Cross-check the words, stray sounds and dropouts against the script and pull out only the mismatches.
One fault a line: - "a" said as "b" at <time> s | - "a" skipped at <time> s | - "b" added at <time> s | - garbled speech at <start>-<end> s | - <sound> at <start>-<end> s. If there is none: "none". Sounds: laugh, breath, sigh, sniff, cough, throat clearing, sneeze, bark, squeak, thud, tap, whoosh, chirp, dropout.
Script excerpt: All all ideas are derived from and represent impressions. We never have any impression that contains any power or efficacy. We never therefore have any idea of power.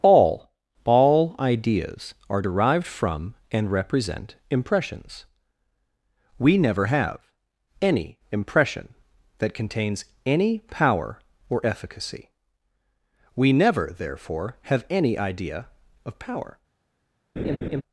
- laugh at 17.4-17.8 s